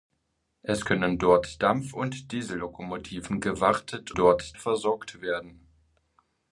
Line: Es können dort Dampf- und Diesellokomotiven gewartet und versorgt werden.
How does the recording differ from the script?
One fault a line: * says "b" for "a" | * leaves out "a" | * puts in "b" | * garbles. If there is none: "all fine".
* says "dort" for "und"